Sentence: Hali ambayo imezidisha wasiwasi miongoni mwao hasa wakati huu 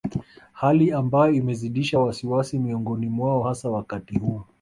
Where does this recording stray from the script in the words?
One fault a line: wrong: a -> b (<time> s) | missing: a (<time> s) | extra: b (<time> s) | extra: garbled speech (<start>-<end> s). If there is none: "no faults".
no faults